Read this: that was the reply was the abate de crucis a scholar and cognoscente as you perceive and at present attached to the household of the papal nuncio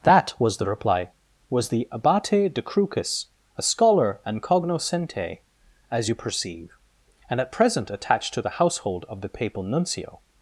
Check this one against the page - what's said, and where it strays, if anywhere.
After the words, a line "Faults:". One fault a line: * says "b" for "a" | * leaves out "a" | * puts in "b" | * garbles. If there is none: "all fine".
that was the reply was the abate de crucis a scholar and cognoscente as you perceive and at present attached to the household of the papal nuncio
Faults:
all fine